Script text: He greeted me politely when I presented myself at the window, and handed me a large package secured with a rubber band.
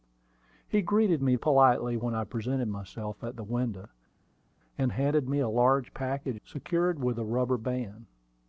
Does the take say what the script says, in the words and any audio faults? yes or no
yes